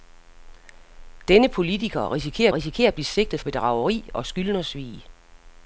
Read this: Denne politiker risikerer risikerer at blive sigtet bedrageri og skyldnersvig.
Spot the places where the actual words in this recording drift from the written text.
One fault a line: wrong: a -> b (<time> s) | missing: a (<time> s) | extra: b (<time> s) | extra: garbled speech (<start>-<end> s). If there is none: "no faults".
no faults